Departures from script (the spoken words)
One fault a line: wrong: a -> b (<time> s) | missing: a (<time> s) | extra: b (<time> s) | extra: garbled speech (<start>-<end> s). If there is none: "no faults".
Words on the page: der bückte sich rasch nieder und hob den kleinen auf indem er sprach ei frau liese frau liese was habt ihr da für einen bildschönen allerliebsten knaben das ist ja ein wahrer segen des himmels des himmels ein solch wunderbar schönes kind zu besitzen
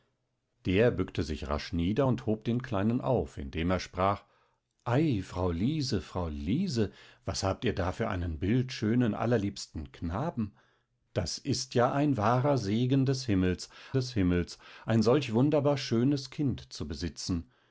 no faults